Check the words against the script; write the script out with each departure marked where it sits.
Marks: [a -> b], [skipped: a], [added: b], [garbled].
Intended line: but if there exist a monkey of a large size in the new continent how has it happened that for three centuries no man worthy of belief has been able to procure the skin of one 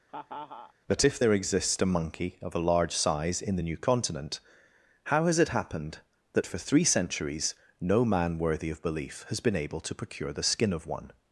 but if there [exist -> exists] a monkey of a large size in the new continent how has it happened that for three centuries no man worthy of belief has been able to procure the skin of one